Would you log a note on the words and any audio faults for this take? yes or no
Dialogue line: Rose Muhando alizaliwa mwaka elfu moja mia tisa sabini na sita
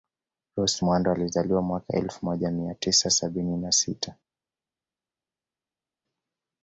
no